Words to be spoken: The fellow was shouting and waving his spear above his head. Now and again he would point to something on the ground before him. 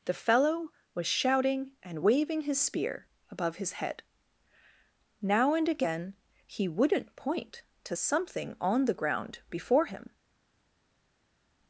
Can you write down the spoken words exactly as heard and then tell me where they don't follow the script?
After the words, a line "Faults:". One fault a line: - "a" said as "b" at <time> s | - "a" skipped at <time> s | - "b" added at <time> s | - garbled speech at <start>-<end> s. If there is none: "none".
The fellow was shouting and waving his spear above his head. Now and again he wouldn't point to something on the ground before him.
Faults:
- "would" said as "wouldn't" at 6.7 s